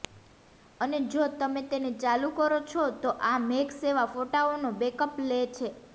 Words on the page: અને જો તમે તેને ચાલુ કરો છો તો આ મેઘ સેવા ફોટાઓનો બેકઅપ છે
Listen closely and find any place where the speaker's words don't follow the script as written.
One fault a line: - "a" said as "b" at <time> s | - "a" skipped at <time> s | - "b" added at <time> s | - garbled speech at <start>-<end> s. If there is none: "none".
- "લે" added at 5.3 s